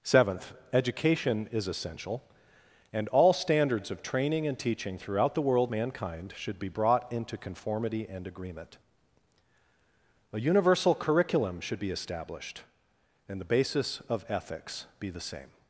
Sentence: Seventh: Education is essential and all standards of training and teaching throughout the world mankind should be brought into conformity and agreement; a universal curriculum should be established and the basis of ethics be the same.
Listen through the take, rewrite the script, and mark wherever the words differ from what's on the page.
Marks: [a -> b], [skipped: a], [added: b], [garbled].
Seventh: Education is essential and all standards of training and teaching throughout the world mankind should be brought into conformity and agreement; a universal curriculum should be established and the basis of ethics be the same.